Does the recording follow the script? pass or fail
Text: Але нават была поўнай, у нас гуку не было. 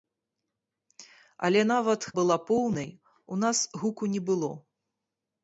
pass